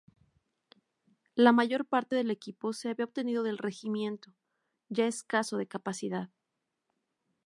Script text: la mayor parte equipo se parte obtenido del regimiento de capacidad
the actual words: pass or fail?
fail